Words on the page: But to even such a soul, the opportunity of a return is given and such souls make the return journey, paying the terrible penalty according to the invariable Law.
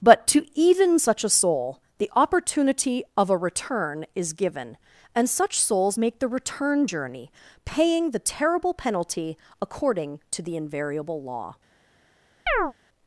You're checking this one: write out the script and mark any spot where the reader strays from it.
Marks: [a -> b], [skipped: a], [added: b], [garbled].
But to even such a soul, the opportunity of a return is given and such souls make the return journey, paying the terrible penalty according to the invariable Law.